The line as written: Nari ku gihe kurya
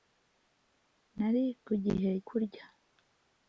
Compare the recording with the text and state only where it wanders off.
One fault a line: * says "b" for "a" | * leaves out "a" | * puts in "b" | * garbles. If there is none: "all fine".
all fine